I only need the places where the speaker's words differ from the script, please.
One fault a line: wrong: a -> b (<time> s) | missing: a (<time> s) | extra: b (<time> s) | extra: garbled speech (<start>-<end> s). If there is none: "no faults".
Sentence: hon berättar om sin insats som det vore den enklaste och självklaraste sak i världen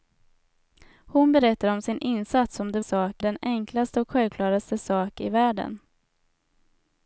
wrong: vore -> sak (2.8 s)